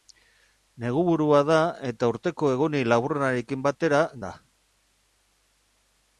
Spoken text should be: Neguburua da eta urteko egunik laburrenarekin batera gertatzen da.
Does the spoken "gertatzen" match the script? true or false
false